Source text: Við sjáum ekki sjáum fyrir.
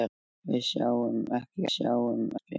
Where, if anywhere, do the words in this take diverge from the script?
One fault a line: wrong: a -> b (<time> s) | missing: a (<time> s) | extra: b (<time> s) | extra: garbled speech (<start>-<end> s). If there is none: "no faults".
no faults